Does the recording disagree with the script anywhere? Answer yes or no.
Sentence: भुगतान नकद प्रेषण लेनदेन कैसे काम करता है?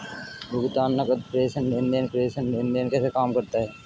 yes